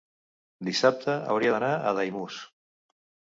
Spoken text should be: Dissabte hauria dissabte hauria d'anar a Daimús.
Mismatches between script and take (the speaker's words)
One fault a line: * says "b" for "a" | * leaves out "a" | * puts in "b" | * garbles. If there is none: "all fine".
* leaves out "dissabte hauria"